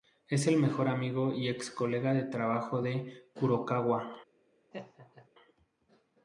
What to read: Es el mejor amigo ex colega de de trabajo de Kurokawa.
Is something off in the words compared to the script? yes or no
yes